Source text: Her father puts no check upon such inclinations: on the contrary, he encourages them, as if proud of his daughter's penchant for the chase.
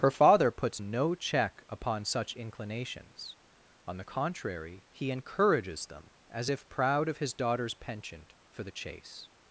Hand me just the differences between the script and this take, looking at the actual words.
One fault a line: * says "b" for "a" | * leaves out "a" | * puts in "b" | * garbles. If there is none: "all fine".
all fine